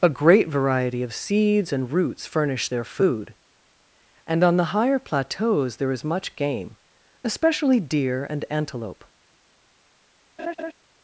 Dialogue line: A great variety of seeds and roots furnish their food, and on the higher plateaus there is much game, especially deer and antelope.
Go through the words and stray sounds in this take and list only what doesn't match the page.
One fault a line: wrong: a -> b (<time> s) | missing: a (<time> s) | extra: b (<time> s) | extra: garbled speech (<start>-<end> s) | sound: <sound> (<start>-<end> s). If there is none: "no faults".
sound: laugh (10.4-10.7 s)